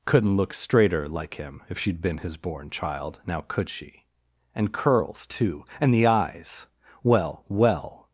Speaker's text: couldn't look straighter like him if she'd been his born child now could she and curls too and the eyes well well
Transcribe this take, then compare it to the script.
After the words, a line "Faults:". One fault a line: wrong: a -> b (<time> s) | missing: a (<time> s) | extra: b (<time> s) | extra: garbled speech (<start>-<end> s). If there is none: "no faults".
couldn't look straighter like him if she'd been his born child now could she and curls too and the eyes well well
Faults:
no faults